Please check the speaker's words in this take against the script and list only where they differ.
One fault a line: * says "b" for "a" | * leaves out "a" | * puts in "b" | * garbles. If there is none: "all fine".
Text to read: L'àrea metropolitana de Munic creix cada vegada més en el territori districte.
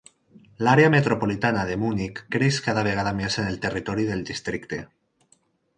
* puts in "del"